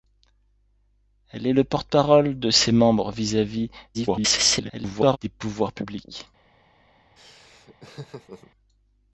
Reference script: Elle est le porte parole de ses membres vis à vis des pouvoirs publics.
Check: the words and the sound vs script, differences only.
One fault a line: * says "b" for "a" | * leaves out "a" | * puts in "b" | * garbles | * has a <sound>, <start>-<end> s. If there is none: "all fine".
* garbles
* has a laugh, 7.2-8.5 s